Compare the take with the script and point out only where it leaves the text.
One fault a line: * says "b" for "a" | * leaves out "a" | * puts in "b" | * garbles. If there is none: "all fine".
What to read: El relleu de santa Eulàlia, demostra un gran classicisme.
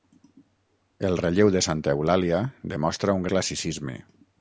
* leaves out "gran"